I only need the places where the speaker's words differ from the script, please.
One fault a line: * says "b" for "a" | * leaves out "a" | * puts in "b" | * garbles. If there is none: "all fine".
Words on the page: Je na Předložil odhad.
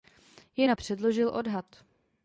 all fine